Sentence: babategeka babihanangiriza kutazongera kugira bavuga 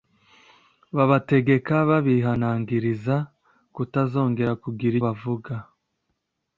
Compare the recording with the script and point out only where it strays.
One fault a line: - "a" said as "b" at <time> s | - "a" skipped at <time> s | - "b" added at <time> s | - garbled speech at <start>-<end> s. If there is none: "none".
none